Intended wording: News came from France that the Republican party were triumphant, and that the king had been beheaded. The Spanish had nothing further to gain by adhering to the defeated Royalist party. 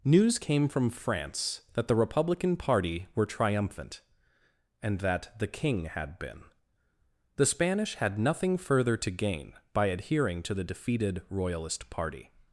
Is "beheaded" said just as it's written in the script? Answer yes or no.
no